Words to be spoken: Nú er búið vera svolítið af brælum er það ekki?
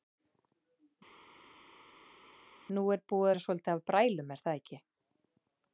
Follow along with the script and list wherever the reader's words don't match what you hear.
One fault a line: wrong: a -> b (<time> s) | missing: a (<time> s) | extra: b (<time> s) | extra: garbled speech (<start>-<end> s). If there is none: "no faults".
no faults